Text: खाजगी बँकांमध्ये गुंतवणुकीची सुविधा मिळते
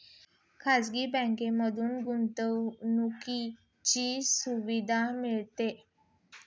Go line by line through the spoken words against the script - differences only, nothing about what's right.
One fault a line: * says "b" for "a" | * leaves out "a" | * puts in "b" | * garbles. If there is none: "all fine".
all fine